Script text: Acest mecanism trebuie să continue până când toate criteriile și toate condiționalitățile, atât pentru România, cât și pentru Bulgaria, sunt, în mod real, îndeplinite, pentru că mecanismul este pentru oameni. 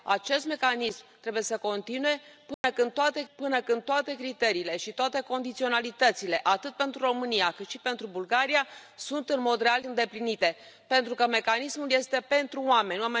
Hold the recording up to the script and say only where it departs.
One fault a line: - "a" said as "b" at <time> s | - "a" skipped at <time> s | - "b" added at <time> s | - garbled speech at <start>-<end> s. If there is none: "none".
- "până când toate" added at 3.3 s